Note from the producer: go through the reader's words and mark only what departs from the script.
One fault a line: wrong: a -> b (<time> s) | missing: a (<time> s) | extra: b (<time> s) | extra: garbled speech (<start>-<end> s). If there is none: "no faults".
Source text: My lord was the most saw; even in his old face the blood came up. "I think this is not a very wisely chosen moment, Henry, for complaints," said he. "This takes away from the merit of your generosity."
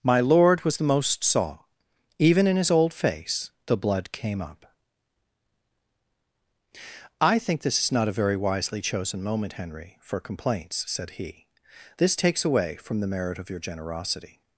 no faults